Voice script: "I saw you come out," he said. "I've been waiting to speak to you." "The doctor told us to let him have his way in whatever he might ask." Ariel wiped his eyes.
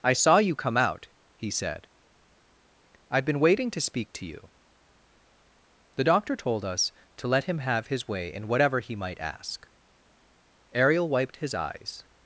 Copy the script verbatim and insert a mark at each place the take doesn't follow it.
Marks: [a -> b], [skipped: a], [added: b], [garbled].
"I saw you come out," he said. "I've been waiting to speak to you." "The doctor told us to let him have his way in whatever he might ask." Ariel wiped his eyes.